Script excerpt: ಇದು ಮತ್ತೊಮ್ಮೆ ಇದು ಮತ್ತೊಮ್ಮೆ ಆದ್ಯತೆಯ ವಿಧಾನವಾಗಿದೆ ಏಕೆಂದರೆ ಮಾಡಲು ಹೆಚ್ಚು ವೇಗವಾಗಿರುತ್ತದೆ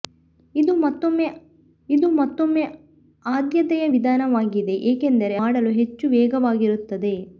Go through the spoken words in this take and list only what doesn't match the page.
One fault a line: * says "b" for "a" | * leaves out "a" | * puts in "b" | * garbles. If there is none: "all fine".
all fine